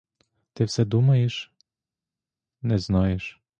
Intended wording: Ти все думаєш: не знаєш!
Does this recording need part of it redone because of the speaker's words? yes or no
no